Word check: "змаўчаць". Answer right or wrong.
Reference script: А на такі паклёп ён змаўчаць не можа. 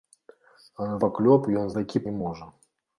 wrong